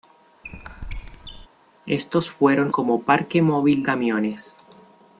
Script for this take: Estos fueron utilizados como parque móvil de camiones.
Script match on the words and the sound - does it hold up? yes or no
no